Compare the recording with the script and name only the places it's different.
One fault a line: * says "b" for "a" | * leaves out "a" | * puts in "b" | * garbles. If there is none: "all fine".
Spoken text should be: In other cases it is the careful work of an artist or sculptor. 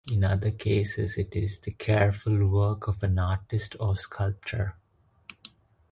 all fine